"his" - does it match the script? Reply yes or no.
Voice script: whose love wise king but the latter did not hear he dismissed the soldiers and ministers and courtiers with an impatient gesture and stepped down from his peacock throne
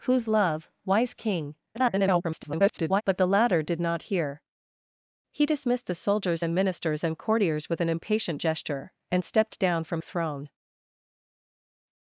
no